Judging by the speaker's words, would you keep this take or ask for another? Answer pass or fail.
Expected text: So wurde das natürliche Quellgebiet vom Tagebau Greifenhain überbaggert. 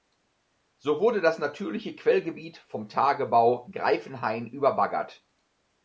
pass